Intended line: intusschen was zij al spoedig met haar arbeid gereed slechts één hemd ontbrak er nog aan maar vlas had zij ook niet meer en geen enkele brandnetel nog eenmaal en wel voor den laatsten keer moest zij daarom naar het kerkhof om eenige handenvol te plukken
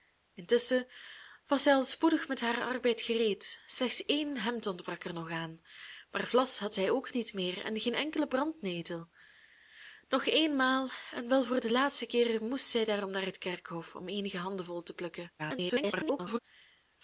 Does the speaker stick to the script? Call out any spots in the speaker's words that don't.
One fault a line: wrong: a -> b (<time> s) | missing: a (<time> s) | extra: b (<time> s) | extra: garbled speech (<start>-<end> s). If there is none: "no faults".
extra: garbled speech (15.4-16.4 s)